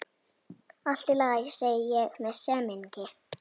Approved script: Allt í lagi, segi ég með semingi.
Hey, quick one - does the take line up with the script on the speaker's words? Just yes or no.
yes